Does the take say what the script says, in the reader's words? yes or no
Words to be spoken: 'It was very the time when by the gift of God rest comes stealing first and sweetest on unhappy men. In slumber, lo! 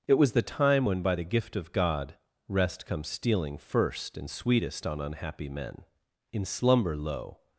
no